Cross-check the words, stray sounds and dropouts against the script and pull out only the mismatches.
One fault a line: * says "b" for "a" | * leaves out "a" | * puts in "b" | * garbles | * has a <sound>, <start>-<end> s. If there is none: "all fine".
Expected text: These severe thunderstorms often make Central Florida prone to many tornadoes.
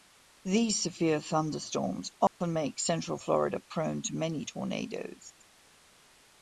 * has a dropout, 2.3-2.4 s